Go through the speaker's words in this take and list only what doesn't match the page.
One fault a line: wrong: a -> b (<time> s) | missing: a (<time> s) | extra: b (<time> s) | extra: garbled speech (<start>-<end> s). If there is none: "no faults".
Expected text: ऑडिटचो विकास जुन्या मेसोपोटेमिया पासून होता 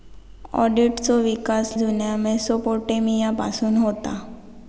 no faults